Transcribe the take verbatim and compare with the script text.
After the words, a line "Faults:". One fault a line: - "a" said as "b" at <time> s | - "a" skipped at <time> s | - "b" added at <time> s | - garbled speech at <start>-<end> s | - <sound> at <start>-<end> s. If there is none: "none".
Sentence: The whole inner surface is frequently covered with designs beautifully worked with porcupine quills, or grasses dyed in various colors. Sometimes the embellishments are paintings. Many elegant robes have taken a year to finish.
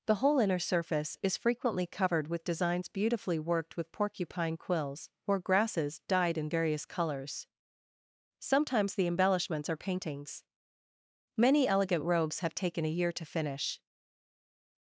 The whole inner surface is frequently covered with designs beautifully worked with porcupine quills, or grasses dyed in various colors. Sometimes the embellishments are paintings. Many elegant robes have taken a year to finish.
Faults:
none